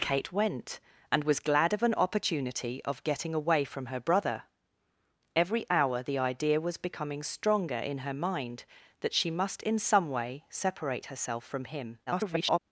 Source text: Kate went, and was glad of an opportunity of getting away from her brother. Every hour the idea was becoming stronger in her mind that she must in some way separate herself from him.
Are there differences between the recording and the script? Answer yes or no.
yes